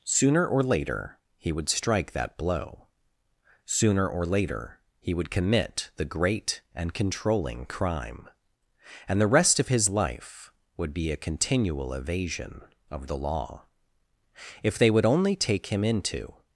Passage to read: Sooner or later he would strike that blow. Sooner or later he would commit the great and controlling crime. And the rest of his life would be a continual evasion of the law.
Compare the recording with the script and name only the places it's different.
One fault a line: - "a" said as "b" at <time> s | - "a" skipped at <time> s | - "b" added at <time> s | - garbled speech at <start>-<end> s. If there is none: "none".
- "If they would only take him into" added at 14.6 s